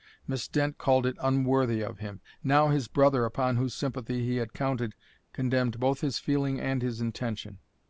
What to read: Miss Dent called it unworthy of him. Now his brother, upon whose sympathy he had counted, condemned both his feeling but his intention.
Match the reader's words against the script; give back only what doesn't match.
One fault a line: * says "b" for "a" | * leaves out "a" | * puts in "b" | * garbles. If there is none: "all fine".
* says "and" for "but"